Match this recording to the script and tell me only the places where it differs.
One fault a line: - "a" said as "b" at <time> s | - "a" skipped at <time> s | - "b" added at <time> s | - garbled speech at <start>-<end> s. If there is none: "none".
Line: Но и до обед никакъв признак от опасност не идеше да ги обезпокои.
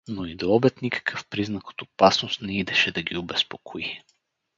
none